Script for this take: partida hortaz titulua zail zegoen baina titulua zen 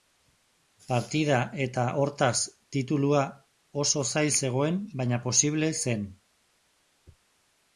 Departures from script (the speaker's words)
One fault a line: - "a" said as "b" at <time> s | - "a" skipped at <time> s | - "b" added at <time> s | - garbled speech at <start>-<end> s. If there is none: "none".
- "eta" added at 1.6 s
- "oso" added at 3.8 s
- "titulua" said as "posible" at 5.3 s